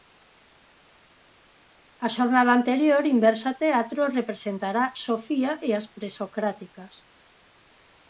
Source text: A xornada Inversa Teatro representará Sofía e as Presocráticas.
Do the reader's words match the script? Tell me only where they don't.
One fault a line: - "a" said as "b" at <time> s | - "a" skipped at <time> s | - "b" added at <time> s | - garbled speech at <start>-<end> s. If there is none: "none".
- "anterior" added at 2.6 s